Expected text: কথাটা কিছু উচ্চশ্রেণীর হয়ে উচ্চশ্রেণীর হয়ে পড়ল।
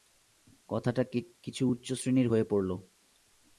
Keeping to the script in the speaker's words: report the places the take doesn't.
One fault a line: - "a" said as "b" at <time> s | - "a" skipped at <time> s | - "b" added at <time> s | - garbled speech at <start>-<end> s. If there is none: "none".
- "উচ্চশ্রেণীর হয়ে" skipped at 2.4 s